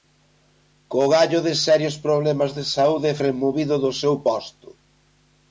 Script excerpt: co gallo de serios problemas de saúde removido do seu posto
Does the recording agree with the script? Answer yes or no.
yes